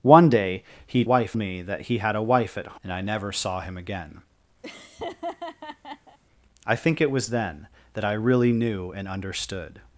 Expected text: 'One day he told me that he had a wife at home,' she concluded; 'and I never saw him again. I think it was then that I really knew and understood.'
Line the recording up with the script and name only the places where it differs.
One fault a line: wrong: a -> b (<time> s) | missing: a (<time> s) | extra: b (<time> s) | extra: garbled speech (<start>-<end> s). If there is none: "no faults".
wrong: told -> wife (1.0 s)
missing: home she concluded (2.8 s)